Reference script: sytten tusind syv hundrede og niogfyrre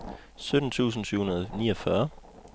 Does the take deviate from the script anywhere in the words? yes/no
no